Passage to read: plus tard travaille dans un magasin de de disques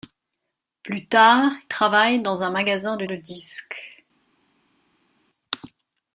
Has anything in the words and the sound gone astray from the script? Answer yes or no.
no